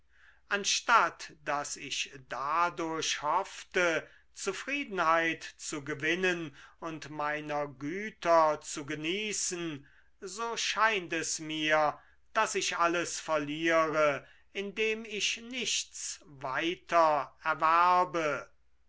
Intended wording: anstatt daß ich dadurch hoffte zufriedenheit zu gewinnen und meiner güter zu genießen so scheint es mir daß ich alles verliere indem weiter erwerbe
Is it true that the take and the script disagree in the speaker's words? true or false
true